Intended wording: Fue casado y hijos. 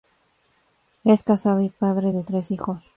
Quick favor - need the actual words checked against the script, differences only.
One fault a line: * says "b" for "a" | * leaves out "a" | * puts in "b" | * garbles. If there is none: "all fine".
* says "Es" for "Fue"
* puts in "padre de tres"